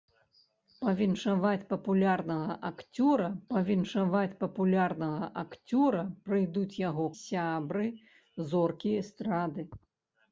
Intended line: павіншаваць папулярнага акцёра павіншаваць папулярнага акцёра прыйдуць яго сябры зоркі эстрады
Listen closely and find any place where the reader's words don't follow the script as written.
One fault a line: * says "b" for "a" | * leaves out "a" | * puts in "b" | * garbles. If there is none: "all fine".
all fine